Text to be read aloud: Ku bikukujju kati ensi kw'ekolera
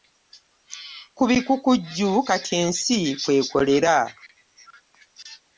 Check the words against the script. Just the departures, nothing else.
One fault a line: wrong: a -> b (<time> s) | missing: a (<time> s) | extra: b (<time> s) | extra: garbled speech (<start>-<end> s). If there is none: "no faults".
no faults